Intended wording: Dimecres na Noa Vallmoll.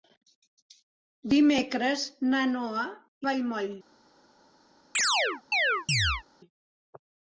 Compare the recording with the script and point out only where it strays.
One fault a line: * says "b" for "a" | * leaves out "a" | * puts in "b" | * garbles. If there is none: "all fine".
all fine